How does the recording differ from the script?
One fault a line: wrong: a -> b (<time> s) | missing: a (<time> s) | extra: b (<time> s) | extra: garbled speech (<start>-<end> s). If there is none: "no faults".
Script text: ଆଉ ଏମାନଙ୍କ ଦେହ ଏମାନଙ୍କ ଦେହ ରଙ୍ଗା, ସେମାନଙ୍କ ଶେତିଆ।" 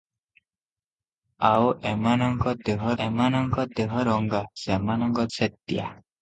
no faults